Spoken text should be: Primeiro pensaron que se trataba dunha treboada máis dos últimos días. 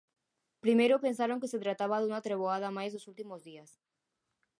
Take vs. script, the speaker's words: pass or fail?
pass